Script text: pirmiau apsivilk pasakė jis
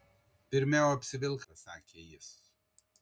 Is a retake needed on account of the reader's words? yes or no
no